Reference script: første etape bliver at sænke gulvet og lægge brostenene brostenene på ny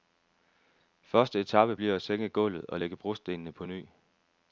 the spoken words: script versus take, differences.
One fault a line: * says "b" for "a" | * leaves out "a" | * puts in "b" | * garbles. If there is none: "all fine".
* leaves out "brostenene"